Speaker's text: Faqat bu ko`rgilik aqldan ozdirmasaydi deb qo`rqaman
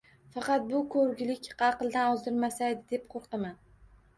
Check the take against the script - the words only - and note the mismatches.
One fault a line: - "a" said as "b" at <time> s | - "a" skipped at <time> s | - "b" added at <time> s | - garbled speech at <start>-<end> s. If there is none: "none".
none